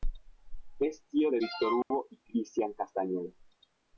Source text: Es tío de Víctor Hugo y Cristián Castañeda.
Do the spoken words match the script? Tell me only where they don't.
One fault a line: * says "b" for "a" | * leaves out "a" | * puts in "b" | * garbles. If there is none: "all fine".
all fine